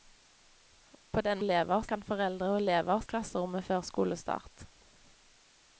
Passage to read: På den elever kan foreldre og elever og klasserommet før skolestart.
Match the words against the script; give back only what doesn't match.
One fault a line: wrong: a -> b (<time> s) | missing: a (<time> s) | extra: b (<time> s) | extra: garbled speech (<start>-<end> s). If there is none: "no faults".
no faults